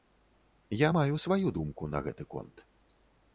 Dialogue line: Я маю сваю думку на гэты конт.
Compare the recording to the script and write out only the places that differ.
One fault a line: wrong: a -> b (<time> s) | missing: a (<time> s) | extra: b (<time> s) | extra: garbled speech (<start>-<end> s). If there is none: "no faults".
no faults